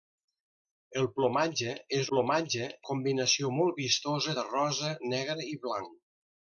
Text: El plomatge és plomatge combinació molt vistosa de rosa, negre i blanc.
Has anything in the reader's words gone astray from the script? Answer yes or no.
no